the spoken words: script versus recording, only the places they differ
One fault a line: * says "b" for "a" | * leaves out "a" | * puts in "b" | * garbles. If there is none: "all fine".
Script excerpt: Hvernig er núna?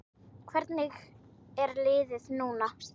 * puts in "liðið"